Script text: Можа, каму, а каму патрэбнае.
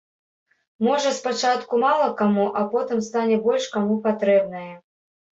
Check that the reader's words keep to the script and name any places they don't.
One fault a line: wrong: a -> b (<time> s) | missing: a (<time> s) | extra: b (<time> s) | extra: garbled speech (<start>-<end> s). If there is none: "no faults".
extra: спачатку мала (1.2 s)
extra: потым стане больш (2.7 s)